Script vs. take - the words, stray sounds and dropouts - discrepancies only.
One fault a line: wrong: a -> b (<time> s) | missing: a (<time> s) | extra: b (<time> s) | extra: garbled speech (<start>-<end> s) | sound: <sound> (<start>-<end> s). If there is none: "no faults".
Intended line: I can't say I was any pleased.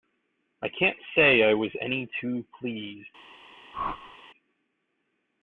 extra: too (2.2 s)
sound: whoosh (3.7-4.2 s)